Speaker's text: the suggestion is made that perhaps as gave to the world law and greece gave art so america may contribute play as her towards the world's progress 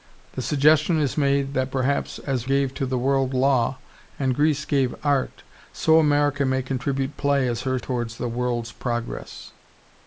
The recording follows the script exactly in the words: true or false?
true